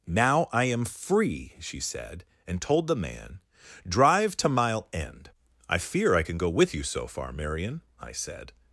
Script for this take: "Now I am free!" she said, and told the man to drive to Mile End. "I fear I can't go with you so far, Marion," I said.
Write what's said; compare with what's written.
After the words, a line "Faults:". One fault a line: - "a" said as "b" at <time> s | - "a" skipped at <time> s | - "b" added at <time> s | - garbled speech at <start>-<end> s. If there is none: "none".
"Now I am free!" she said, and told the man drive to Mile End. "I fear I can go with you so far, Marion," I said.
Faults:
- "to" skipped at 3.4 s
- "can't" said as "can" at 6.2 s